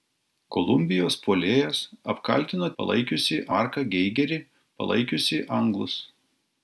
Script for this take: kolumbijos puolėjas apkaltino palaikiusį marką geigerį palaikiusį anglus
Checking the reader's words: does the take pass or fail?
pass